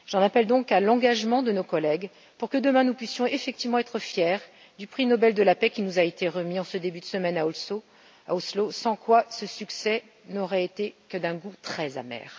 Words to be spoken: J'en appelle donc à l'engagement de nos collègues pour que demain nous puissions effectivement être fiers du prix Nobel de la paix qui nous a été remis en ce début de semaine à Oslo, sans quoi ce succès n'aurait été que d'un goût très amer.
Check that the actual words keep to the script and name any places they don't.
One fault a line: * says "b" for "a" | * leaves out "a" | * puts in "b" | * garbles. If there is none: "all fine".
all fine